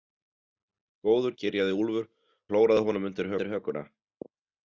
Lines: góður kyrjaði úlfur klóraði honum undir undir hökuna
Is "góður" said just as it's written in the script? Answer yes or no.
yes